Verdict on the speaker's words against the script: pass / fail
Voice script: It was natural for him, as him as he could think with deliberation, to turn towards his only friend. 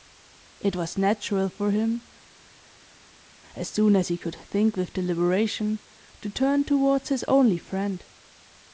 fail